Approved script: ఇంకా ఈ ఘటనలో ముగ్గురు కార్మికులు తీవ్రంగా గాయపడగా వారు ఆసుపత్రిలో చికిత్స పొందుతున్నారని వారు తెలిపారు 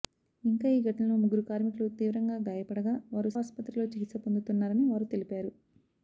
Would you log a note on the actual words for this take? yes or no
no